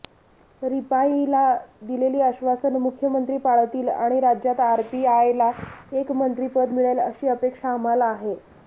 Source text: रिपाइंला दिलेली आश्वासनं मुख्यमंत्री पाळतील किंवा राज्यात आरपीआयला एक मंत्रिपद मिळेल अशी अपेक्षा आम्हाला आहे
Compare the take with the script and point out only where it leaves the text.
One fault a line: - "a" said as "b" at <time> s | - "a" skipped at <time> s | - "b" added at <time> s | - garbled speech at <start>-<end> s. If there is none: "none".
- "किंवा" said as "आणि" at 3.9 s